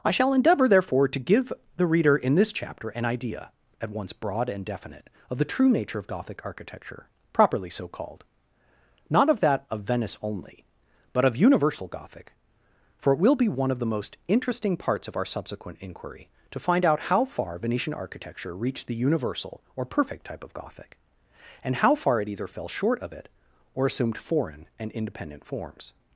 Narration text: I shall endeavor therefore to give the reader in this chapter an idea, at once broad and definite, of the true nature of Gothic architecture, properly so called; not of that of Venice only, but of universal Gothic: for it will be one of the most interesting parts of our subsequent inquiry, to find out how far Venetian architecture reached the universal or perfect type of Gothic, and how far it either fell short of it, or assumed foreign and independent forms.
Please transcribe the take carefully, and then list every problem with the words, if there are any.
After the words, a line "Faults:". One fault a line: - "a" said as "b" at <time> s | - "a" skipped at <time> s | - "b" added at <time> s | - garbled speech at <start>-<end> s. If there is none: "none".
I shall endeavor therefore to give the reader in this chapter an idea, at once broad and definite, of the true nature of Gothic architecture, properly so called; not of that of Venice only, but of universal Gothic: for it will be one of the most interesting parts of our subsequent inquiry, to find out how far Venetian architecture reached the universal or perfect type of Gothic, and how far it either fell short of it, or assumed foreign and independent forms.
Faults:
none